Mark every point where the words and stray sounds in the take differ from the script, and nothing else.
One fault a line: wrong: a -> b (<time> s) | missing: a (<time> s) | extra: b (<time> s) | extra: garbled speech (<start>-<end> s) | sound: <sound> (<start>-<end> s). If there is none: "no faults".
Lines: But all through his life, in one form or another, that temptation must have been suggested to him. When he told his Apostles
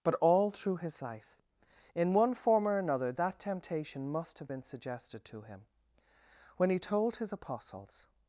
no faults